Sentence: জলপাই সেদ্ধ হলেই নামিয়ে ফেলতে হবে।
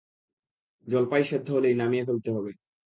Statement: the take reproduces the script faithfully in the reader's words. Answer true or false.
true